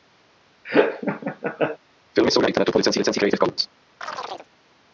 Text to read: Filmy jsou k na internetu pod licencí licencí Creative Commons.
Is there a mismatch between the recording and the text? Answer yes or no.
no